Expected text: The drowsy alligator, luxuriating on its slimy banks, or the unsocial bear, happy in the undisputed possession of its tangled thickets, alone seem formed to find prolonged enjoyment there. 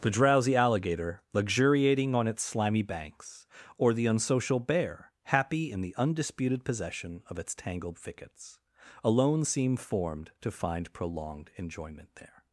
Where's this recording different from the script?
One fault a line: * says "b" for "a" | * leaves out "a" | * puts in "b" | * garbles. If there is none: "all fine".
all fine